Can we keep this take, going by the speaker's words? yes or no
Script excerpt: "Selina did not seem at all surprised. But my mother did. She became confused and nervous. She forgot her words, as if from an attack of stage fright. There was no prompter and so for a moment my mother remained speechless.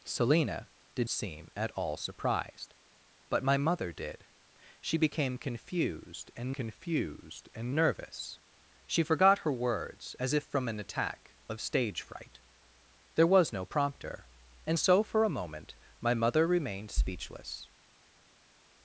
no